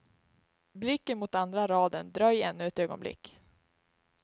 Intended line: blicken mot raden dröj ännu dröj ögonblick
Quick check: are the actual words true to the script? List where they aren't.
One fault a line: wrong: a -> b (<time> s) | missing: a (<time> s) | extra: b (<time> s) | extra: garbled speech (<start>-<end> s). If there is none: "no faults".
extra: andra (1.4 s)
wrong: dröj -> ett (2.7 s)